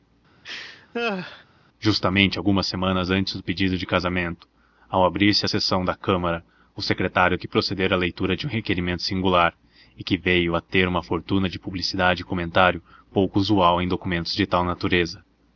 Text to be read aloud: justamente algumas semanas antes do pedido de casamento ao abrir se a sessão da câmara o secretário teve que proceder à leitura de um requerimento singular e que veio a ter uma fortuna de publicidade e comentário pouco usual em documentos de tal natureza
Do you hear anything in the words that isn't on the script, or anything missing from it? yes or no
yes